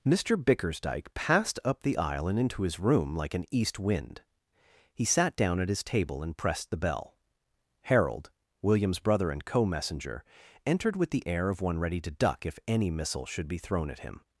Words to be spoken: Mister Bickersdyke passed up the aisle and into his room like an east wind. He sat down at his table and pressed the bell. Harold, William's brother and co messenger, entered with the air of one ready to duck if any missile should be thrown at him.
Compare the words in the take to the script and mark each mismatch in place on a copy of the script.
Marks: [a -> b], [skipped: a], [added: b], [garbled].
Mister Bickersdyke passed up the aisle and into his room like an east wind. He sat down at his table and pressed the bell. Harold, William's brother and co messenger, entered with the air of one ready to duck if any missile should be thrown at him.